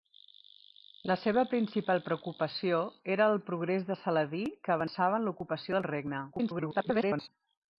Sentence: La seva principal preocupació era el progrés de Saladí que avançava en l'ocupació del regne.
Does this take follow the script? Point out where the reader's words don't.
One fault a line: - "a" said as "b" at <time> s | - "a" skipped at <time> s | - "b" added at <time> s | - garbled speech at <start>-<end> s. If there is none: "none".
- garbled speech at 6.3-7.3 s